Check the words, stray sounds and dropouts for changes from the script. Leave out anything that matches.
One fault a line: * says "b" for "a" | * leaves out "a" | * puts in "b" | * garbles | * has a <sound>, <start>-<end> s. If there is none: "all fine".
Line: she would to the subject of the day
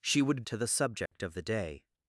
* has a dropout, 1.1-1.1 s